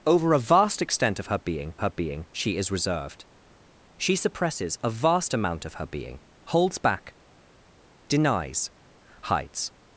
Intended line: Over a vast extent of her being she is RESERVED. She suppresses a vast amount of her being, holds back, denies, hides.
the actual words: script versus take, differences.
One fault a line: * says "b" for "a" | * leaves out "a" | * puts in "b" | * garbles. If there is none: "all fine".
* puts in "her being"